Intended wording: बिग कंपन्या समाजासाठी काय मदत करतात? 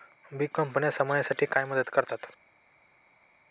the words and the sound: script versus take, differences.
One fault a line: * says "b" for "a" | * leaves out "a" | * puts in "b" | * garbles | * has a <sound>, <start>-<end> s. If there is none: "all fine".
all fine